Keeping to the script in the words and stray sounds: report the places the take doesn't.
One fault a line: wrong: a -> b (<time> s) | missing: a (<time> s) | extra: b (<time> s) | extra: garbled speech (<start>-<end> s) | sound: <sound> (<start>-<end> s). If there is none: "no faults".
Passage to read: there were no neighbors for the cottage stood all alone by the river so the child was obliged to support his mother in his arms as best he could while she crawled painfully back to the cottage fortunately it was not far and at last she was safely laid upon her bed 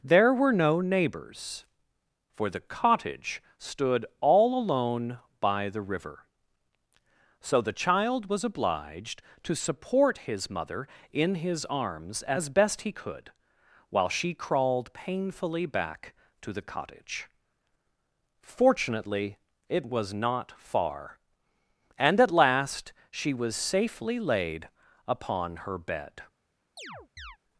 sound: chirp (26.8-27.4 s)